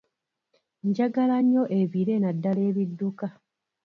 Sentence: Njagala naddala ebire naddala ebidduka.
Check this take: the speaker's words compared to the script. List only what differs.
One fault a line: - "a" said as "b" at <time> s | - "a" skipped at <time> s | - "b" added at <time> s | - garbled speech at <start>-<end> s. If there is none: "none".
- "naddala" said as "nnyo" at 1.4 s